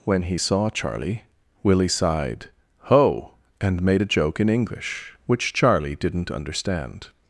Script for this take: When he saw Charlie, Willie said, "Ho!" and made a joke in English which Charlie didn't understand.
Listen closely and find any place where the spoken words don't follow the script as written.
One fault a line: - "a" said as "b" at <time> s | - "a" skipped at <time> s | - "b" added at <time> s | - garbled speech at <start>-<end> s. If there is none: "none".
- "said" said as "sighed" at 1.9 s